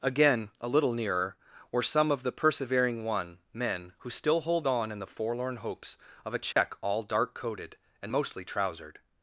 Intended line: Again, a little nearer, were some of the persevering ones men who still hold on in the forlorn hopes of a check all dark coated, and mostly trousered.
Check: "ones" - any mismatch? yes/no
yes